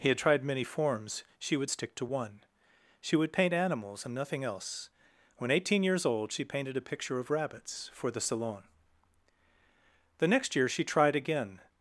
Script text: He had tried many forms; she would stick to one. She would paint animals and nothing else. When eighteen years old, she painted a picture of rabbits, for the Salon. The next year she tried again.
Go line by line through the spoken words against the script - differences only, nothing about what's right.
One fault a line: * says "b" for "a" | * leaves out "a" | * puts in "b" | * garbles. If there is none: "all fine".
all fine